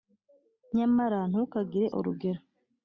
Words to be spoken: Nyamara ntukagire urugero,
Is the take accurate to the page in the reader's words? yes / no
yes